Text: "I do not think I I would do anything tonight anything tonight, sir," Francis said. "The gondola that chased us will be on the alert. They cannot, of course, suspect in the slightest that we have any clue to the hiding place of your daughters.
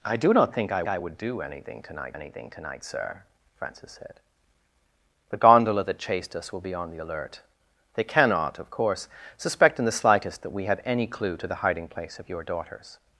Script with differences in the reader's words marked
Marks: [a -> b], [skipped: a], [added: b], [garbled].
"I do not think I I would do anything tonight anything tonight, sir," Francis said. "The gondola that chased us will be on the alert. They cannot, of course, suspect in the slightest that we have any clue to the hiding place of your daughters.